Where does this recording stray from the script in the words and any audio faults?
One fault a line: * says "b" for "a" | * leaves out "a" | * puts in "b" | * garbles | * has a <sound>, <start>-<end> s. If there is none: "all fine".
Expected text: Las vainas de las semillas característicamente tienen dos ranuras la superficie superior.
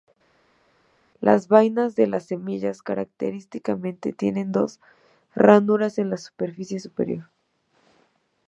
* puts in "en"